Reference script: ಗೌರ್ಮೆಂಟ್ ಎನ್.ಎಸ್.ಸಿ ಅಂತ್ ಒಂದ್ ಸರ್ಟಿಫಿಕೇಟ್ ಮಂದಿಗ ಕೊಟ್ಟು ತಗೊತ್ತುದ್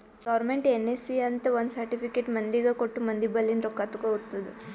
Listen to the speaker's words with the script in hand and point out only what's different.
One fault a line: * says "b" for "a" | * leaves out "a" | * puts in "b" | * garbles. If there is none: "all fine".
* puts in "ಮಂದಿ ಬಲ್ಲಿಂದ್ ರೊಕ್ಕಾ"